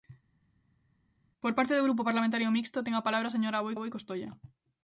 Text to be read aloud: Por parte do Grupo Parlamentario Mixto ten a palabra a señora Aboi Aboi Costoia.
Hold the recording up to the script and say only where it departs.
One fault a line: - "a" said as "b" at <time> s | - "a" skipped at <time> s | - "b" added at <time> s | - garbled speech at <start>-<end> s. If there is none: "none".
none